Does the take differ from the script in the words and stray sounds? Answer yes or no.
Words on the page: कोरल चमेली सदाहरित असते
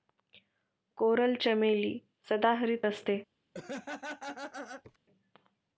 yes